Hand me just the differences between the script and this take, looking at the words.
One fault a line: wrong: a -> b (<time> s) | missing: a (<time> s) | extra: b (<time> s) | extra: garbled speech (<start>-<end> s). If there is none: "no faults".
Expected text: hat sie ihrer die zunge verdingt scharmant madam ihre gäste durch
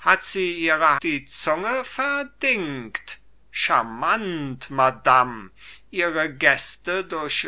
no faults